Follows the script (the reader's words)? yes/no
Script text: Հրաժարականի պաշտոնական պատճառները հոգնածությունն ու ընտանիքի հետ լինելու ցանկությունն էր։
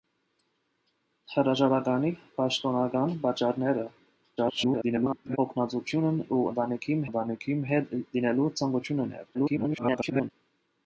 no